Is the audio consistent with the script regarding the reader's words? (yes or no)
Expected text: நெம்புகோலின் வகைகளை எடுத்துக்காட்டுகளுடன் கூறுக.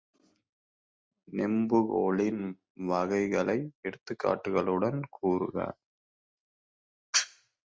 yes